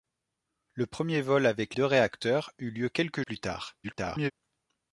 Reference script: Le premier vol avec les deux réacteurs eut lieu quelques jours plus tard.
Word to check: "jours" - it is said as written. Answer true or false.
false